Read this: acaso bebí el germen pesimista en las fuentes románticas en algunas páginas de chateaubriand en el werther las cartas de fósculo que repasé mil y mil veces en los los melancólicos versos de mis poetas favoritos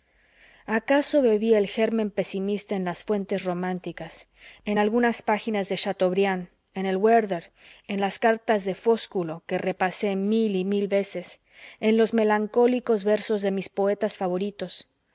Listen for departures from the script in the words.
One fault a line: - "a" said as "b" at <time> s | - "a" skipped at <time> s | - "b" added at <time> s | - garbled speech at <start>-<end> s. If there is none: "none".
- "en" added at 7.9 s
- "los" skipped at 12.1 s